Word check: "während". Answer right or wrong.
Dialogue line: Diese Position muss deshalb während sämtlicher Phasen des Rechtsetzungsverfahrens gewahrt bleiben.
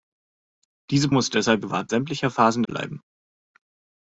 wrong